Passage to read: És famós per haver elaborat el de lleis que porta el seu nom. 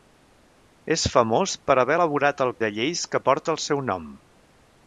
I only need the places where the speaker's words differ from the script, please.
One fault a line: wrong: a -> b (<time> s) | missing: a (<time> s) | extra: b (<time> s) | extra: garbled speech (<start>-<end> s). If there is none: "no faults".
no faults